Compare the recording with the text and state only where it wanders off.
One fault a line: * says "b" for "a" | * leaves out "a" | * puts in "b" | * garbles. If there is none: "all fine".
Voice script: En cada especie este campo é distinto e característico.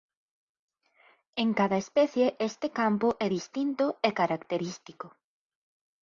all fine